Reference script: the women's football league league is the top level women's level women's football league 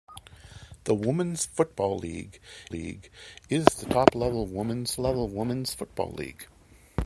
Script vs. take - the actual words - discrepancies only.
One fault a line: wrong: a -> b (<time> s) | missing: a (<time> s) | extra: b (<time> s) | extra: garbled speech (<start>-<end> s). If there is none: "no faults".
no faults